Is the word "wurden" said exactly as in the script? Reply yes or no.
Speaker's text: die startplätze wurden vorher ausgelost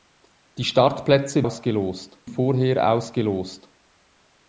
no